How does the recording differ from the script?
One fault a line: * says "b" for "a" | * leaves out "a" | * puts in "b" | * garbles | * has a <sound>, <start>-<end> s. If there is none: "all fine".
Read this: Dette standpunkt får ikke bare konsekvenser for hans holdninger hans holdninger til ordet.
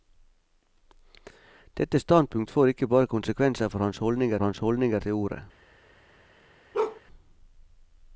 * has a bark, 6.7-7.0 s